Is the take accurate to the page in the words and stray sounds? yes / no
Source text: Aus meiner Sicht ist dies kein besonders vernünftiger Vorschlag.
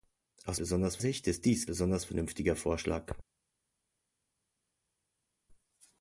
no